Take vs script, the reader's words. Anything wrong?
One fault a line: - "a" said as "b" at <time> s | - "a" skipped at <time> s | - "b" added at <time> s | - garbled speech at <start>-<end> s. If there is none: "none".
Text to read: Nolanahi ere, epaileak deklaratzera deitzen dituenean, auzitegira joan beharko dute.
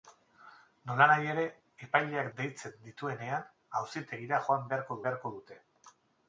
- "deklaratzera" skipped at 2.3 s
- "beharko" added at 5.1 s